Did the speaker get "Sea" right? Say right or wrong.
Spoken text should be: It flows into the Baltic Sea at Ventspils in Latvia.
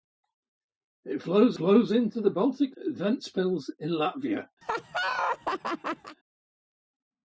wrong